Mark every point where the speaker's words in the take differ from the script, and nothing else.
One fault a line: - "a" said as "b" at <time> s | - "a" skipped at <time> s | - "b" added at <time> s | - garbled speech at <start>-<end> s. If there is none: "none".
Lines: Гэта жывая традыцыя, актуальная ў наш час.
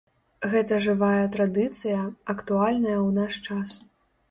none